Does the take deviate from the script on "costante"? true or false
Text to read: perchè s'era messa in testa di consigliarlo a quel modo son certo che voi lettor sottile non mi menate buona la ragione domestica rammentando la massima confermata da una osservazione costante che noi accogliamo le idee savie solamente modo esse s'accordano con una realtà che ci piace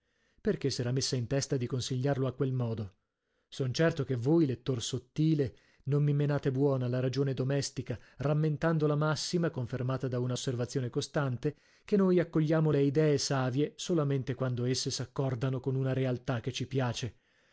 false